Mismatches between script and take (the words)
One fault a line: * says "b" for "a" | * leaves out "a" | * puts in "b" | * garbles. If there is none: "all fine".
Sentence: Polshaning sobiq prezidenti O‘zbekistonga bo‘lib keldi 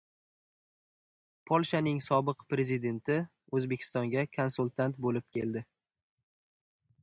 * puts in "konsultant"